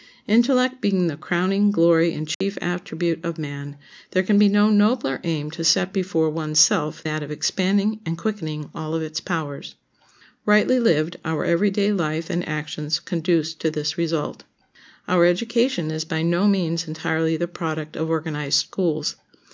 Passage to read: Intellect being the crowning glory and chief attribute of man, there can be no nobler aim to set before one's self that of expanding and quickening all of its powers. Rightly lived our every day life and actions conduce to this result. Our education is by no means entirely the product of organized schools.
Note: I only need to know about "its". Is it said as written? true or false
true